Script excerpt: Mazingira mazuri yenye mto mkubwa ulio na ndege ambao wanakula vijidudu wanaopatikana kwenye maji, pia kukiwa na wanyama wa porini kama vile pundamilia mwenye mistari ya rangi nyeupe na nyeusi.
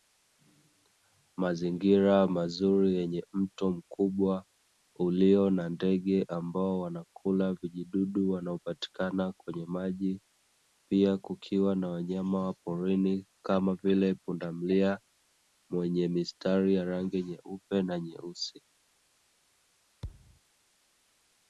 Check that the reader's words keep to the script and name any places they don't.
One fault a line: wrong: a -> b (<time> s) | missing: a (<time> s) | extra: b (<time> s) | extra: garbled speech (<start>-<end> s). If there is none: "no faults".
no faults